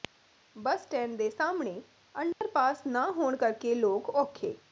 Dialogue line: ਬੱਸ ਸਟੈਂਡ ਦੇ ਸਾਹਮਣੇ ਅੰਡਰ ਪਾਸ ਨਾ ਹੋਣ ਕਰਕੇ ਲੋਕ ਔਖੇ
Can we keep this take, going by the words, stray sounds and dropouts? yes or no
no